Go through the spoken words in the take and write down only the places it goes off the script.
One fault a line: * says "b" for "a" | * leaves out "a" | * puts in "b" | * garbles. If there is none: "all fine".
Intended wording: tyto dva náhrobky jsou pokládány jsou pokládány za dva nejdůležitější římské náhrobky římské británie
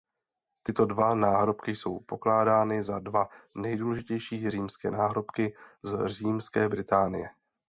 * leaves out "jsou pokládány"
* puts in "z"